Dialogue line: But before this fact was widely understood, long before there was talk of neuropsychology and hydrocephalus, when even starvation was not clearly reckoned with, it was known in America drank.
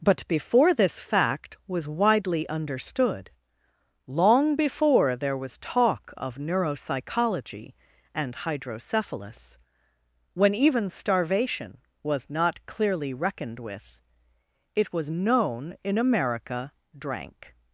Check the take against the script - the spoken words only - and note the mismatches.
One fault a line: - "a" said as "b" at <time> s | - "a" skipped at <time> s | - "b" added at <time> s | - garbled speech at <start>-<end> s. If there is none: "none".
none